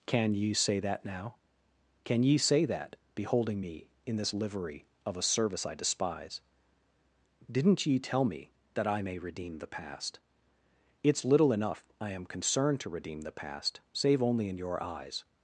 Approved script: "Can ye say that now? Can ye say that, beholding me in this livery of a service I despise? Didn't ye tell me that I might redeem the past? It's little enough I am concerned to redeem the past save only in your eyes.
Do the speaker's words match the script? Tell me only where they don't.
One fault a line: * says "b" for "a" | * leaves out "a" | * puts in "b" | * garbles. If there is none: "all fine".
* says "may" for "might"